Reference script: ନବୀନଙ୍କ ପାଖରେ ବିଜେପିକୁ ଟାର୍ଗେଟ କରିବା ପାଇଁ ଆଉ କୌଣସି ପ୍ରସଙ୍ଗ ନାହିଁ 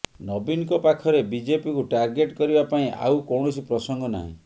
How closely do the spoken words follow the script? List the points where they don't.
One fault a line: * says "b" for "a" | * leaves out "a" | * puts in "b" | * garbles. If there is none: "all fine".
all fine